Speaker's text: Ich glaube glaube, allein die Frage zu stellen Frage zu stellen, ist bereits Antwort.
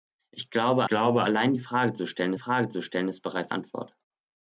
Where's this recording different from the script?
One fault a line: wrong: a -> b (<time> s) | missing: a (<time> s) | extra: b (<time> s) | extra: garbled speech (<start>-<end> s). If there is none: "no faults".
no faults